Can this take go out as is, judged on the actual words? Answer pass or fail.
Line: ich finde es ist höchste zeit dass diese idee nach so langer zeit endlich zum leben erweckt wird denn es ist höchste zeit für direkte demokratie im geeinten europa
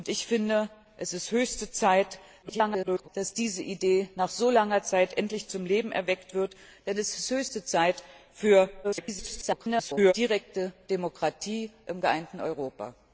fail